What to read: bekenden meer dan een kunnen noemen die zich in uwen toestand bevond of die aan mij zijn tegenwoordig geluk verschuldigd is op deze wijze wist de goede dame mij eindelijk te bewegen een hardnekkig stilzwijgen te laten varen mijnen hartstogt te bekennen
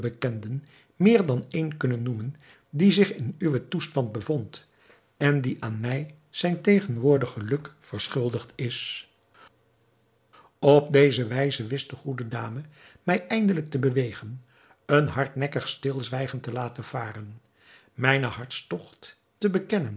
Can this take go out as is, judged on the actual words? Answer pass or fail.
fail